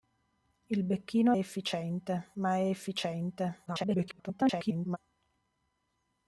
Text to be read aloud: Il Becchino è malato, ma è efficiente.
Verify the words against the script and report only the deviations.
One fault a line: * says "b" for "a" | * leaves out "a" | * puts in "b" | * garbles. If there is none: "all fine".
* says "efficiente" for "malato"
* garbles